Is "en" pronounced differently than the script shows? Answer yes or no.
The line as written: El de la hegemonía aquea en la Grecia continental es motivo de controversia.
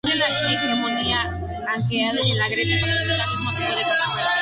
no